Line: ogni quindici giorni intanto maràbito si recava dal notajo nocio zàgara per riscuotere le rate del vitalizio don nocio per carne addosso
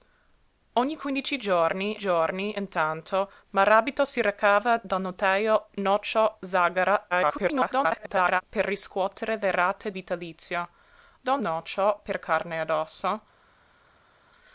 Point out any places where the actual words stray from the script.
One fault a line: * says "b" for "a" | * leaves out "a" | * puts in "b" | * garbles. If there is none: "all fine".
* puts in "giorni"
* garbles
* leaves out "del"